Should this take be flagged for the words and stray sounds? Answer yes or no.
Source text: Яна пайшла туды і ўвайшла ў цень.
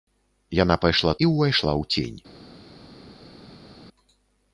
yes